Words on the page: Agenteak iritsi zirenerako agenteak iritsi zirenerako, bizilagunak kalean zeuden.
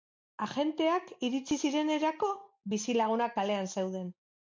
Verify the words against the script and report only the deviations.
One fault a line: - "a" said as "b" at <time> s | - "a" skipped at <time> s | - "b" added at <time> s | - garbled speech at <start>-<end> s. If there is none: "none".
- "agenteak iritsi zirenerako" skipped at 2.3 s